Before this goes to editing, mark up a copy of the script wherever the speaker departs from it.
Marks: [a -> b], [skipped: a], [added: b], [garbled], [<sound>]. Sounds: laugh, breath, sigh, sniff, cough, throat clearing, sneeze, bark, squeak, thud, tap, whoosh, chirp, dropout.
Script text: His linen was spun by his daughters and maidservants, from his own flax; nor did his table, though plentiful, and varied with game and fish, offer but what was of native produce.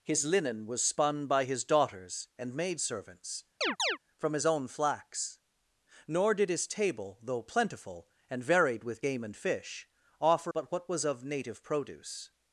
His linen was spun by his daughters and maidservants, [chirp] from his own flax; nor did his table, though plentiful, and varied with game and fish, offer but what was of native produce.